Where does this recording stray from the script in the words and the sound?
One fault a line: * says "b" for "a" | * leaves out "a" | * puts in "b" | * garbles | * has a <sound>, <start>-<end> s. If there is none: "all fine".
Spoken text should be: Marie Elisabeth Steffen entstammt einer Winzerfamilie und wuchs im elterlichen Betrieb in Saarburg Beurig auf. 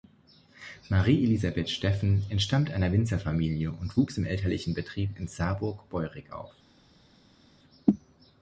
all fine